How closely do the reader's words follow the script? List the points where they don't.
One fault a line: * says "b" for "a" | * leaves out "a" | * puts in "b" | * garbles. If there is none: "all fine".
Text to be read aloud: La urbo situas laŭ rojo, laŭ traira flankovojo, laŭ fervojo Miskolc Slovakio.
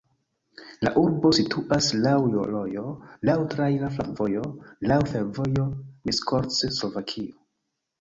all fine